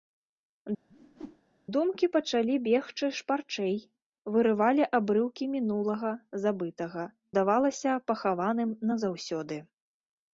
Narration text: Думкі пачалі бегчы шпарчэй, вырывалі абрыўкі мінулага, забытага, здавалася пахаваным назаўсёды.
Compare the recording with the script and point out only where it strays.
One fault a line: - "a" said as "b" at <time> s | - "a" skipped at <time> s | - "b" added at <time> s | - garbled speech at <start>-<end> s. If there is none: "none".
none